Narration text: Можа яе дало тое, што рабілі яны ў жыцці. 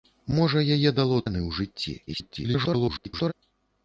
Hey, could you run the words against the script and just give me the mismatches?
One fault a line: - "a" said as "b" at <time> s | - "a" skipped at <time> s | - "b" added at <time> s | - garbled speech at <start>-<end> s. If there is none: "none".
- "тое што рабілі" skipped at 1.2 s
- garbled speech at 2.1-3.3 s